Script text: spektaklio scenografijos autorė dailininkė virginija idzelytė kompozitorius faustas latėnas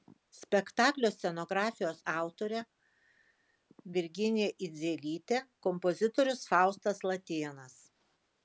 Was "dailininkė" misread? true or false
true